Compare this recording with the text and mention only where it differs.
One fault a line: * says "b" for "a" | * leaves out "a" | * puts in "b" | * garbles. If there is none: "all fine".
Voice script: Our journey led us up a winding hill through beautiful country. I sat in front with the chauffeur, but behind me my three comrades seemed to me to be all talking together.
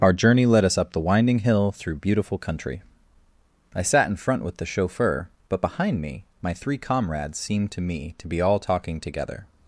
* says "the" for "a"